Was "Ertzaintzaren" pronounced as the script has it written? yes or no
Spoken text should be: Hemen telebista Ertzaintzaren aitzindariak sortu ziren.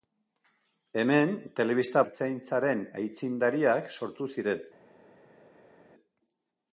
yes